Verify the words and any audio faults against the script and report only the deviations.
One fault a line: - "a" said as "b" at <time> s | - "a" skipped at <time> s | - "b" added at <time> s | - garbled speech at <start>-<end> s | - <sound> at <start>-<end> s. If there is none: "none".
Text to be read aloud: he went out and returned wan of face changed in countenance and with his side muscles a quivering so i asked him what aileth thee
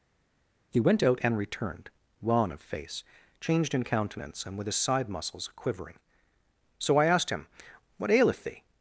- "a" skipped at 5.5 s